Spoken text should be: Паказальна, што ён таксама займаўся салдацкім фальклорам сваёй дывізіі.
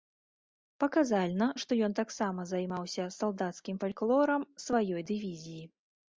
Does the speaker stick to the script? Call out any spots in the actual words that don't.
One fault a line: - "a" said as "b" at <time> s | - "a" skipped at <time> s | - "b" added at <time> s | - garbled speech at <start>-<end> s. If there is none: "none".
none